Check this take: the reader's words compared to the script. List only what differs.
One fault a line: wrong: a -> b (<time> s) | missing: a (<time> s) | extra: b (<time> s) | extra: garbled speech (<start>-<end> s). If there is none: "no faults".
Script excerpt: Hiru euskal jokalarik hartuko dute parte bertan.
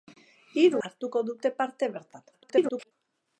missing: euskal jokalarik (0.8 s)
extra: garbled speech (2.3-2.9 s)